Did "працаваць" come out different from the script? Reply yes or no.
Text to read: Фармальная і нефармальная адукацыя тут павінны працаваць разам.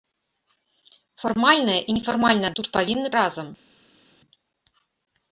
yes